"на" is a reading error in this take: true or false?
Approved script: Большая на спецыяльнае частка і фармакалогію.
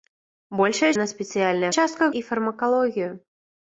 false